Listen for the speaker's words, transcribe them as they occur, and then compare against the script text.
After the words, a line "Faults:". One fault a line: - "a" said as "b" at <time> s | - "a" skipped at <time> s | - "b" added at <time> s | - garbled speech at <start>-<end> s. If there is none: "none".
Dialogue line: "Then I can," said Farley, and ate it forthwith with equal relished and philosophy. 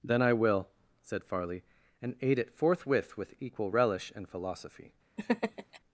"Then I will," said Farley, and ate it forthwith with equal relish and philosophy.
Faults:
- "can" said as "will" at 0.3 s
- "relished" said as "relish" at 3.7 s